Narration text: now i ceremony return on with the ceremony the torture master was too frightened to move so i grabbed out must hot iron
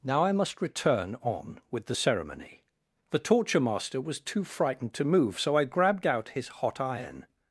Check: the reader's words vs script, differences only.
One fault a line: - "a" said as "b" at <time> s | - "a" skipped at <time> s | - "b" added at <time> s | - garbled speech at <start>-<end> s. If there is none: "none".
- "ceremony" said as "must" at 0.3 s
- "must" said as "his" at 6.4 s